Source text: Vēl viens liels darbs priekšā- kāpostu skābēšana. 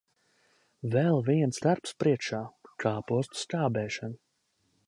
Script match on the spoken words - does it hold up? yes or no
no